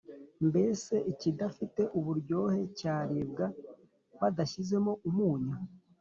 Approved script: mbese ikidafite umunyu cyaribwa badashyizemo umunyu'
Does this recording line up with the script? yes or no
no